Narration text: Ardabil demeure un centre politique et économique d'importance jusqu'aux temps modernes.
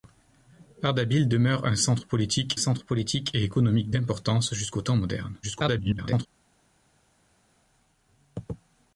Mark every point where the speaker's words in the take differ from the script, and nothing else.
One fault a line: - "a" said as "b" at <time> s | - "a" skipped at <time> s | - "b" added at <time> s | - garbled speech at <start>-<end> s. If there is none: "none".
- "centre politique" added at 2.5 s
- garbled speech at 5.4-6.3 s